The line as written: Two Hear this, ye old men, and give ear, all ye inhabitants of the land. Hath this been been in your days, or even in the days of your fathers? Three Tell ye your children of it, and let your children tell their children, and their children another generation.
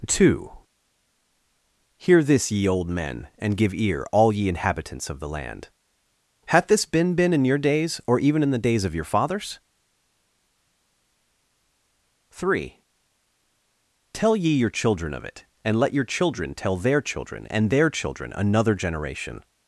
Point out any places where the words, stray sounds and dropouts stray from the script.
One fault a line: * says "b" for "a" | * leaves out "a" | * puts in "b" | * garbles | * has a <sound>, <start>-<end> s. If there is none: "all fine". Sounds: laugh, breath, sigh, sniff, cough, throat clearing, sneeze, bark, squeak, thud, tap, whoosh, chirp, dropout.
all fine